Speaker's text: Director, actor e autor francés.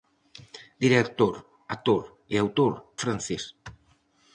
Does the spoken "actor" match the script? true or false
true